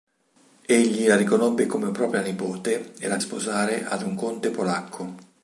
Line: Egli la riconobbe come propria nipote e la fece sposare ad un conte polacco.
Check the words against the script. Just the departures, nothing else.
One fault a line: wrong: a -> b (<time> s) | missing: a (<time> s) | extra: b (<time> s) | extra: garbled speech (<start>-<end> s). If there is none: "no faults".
missing: fece (3.2 s)